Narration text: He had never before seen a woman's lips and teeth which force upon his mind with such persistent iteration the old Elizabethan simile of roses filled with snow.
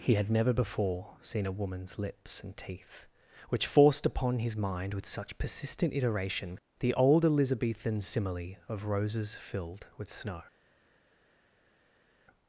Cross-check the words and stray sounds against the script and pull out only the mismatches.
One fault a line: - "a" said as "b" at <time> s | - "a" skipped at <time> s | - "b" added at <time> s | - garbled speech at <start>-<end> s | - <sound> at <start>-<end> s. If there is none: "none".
- "force" said as "forced" at 3.7 s